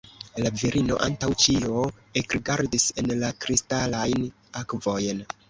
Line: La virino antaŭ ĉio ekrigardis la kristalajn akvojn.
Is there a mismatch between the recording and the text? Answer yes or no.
yes